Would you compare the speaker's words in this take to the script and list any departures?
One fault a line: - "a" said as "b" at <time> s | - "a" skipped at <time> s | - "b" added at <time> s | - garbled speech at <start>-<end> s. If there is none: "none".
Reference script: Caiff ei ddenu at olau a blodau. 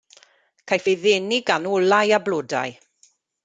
- "at" said as "gan" at 1.5 s